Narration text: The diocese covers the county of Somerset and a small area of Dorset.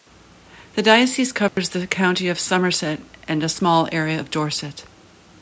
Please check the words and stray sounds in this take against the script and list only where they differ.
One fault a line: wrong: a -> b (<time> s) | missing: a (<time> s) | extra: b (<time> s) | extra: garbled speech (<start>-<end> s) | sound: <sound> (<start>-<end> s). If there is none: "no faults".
sound: dropout (1.5-1.6 s)